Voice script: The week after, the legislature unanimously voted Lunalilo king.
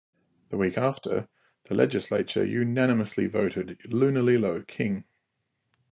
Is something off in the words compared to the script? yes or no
no